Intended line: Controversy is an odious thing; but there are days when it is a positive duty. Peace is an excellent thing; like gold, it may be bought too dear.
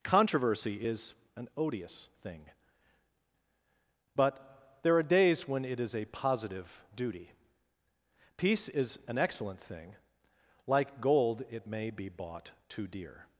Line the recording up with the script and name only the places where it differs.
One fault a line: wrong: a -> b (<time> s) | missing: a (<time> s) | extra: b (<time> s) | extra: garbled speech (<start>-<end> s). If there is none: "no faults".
no faults